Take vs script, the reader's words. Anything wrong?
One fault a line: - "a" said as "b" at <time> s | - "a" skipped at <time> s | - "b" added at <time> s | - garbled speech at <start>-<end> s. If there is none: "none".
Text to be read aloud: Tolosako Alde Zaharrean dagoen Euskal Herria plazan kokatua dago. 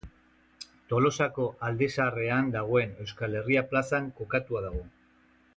none